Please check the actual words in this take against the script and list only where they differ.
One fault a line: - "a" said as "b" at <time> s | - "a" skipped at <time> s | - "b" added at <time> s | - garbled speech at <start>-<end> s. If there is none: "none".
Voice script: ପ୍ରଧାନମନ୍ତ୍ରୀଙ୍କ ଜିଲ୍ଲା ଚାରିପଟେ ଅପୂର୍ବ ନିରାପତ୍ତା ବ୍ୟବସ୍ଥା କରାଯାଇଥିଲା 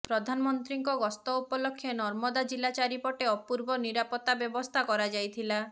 - "ଗସ୍ତ ଉପଲକ୍ଷେ ନର୍ମଦା" added at 1.0 s